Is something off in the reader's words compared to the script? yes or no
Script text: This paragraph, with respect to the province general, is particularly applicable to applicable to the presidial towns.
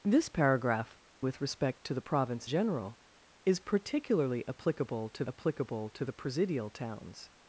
no